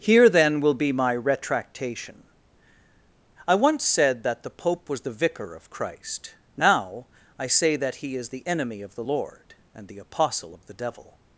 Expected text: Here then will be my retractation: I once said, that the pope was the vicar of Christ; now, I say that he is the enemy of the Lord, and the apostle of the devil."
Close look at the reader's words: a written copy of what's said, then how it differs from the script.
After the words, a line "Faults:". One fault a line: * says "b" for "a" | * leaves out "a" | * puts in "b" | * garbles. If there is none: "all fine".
Here then will be my retractation: I once said, that the pope was the vicar of Christ; now, I say that he is the enemy of the Lord, and the apostle of the devil."
Faults:
all fine